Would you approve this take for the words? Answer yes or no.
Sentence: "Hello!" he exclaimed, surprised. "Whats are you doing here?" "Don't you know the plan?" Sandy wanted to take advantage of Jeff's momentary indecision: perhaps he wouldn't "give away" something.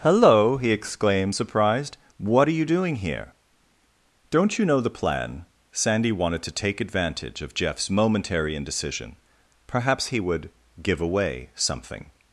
no